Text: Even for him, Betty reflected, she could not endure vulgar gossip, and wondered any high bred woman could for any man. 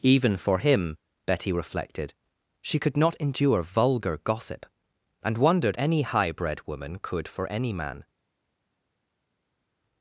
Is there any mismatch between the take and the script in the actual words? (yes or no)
no